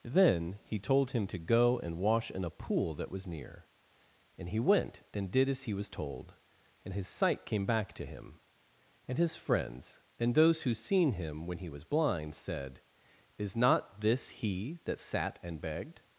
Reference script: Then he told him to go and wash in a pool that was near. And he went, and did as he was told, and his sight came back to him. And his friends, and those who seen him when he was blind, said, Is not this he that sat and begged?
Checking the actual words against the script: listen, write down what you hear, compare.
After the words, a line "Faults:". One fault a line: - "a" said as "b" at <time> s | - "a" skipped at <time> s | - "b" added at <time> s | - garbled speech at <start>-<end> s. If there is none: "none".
Then he told him to go and wash in a pool that was near. And he went, and did as he was told, and his sight came back to him. And his friends, and those who seen him when he was blind, said, Is not this he that sat and begged?
Faults:
none